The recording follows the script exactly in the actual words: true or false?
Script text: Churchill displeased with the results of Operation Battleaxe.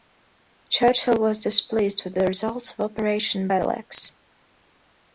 false